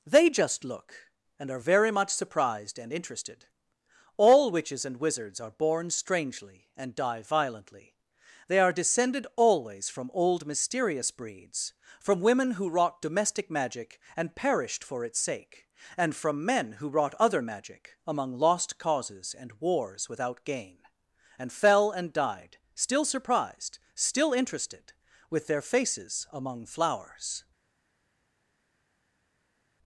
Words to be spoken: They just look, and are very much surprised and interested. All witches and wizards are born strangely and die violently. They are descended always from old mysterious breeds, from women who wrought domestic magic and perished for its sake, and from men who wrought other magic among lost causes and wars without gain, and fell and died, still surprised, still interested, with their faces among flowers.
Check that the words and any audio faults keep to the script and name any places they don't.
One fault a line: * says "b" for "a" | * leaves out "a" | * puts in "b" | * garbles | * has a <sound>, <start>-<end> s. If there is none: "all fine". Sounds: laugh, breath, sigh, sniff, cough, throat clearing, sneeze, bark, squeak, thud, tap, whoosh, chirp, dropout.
all fine